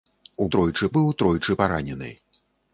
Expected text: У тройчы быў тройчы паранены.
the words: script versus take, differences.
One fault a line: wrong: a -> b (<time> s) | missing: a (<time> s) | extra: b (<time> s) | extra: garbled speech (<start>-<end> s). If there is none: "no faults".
no faults